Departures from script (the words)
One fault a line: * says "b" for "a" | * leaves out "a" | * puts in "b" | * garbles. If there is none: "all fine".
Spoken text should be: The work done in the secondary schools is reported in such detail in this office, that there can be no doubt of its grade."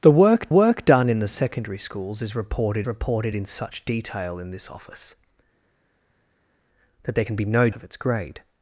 * puts in "work"
* puts in "reported"
* leaves out "doubt"